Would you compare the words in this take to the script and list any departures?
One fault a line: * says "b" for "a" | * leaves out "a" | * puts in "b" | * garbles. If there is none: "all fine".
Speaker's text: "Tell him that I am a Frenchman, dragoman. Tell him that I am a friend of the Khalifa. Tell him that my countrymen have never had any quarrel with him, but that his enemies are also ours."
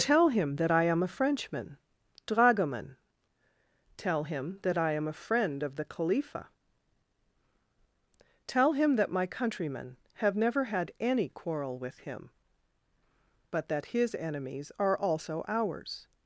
all fine